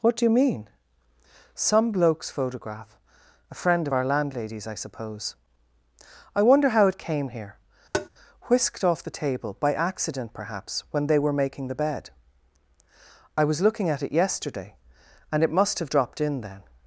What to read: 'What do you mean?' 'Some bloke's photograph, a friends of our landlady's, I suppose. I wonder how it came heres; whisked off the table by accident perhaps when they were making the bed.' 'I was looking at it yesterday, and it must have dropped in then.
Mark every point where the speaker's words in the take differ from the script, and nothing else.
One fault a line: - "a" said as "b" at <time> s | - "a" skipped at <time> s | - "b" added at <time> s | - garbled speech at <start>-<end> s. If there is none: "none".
- "friends" said as "friend" at 3.5 s
- "heres" said as "here" at 7.3 s